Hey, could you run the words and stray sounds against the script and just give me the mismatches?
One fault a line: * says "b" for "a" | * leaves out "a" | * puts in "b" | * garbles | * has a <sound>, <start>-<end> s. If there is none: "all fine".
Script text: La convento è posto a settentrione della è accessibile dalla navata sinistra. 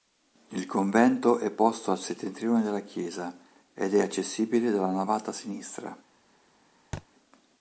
* says "Il" for "La"
* puts in "chiesa ed"
* has a thud, 6.9-7.1 s